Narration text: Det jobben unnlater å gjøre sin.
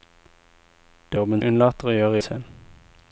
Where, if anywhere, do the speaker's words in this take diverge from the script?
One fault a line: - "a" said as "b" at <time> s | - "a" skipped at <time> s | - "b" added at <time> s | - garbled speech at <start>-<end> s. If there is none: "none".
none